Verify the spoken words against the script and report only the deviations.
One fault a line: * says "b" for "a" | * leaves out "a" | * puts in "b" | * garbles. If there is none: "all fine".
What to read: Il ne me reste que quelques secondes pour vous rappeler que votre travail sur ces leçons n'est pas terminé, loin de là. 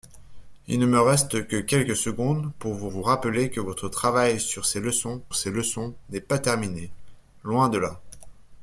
* puts in "vous"
* puts in "ces leçons"